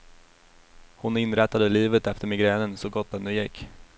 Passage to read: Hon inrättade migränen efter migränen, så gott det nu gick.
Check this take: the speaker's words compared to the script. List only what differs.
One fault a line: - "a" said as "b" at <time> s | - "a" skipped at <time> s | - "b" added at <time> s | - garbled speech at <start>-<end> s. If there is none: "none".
- "migränen" said as "livet" at 1.7 s